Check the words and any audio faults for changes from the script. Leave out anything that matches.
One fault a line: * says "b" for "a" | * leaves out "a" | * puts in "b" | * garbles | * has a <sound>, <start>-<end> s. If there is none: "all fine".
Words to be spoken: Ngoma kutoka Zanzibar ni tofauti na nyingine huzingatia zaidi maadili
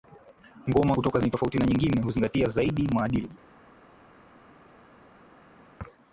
* leaves out "Zanzibar"